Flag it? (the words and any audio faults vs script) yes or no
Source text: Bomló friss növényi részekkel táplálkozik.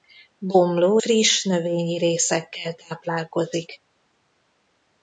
no